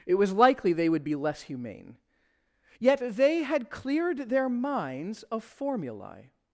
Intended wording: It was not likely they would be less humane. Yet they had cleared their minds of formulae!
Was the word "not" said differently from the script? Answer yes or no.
yes